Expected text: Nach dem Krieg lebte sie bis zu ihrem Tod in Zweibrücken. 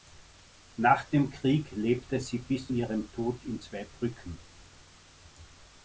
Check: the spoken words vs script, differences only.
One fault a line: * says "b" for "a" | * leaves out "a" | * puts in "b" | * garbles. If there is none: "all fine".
* leaves out "zu"